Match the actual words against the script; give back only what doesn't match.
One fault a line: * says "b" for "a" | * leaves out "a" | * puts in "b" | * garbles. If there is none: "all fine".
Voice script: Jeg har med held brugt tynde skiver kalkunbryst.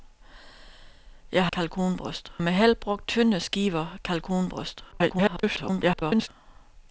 * says "kalkunbryst" for "har"
* garbles